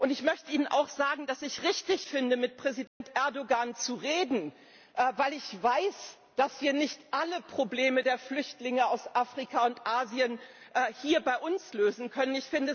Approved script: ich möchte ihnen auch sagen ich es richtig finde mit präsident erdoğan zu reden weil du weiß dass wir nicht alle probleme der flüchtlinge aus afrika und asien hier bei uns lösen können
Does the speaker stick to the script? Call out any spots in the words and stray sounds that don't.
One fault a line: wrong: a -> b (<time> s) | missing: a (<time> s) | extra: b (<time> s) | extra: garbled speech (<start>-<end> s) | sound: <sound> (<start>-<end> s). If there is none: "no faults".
extra: dass (1.3 s)
sound: dropout (2.9-3.0 s)
wrong: du -> ich (5.3 s)